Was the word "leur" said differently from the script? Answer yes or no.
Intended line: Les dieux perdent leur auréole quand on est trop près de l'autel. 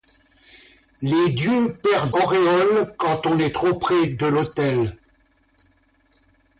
yes